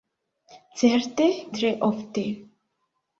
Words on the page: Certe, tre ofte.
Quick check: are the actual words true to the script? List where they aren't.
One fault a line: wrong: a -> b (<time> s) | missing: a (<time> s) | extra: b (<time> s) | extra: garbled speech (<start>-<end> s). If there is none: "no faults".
no faults